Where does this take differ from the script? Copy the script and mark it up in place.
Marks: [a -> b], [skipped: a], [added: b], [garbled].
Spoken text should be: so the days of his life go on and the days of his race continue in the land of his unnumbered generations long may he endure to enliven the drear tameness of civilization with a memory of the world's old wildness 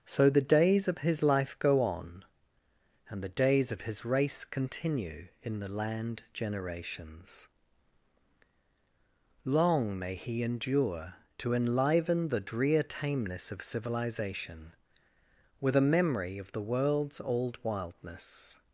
so the days of his life go on and the days of his race continue in the land [skipped: of his unnumbered] generations long may he endure to enliven the drear tameness of civilization with a memory of the world's old wildness